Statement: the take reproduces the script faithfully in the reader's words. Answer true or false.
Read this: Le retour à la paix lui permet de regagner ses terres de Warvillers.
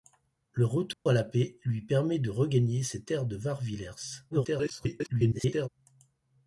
false